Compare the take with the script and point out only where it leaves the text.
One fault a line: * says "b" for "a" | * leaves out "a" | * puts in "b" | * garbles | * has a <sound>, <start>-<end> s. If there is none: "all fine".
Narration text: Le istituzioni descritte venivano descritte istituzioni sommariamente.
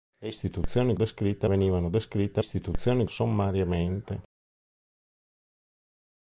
all fine